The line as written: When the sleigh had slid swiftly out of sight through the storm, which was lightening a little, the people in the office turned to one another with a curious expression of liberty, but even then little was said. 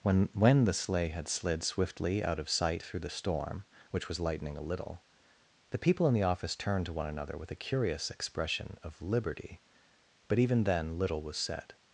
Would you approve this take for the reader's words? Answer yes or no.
no